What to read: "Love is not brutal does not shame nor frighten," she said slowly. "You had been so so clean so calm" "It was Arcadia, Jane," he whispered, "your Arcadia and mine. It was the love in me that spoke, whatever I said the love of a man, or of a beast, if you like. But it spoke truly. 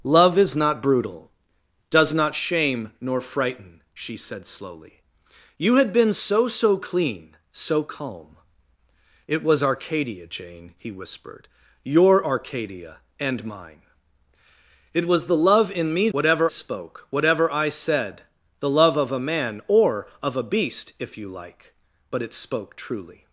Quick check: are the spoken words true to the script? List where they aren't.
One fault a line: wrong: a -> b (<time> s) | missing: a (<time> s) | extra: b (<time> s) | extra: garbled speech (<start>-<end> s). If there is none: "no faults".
wrong: that -> whatever (16.1 s)